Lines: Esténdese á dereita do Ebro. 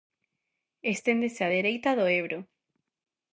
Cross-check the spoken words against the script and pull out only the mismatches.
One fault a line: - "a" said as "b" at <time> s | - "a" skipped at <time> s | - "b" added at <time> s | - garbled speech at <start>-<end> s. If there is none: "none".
none